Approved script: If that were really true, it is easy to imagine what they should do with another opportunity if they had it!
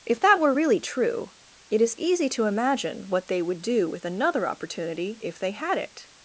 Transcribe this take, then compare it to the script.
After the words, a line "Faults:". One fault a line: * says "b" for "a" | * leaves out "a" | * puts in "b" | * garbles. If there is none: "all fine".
If that were really true, it is easy to imagine what they would do with another opportunity if they had it!
Faults:
* says "would" for "should"